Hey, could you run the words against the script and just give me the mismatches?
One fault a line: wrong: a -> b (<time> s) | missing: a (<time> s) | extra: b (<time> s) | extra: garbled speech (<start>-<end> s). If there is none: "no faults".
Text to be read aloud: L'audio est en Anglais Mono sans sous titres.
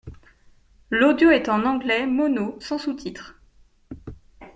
no faults